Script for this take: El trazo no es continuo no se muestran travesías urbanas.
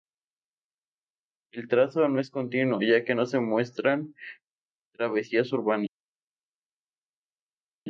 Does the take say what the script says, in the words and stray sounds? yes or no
no